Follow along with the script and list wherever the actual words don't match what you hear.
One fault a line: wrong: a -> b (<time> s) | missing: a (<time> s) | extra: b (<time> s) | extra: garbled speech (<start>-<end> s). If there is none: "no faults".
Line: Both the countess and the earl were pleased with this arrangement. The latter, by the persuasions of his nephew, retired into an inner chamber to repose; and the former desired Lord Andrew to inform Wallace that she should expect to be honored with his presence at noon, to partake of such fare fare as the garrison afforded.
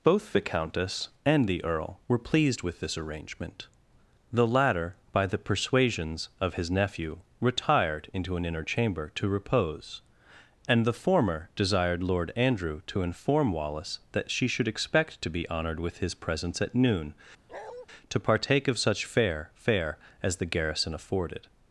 no faults